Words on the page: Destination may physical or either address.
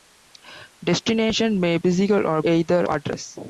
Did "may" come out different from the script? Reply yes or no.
no